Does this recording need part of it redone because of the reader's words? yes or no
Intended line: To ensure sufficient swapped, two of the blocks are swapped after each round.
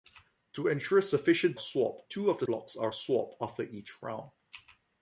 no